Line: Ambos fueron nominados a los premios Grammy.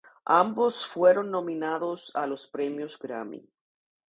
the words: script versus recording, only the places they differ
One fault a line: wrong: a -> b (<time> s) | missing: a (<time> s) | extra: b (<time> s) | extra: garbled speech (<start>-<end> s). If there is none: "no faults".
no faults